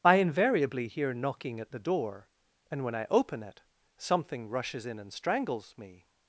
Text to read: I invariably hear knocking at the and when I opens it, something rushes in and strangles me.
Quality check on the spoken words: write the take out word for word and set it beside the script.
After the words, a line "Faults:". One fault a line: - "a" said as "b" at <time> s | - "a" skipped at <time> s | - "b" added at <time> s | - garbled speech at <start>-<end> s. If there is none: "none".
I invariably hear knocking at the door, and when I open it, something rushes in and strangles me.
Faults:
- "door" added at 1.8 s
- "opens" said as "open" at 3.1 s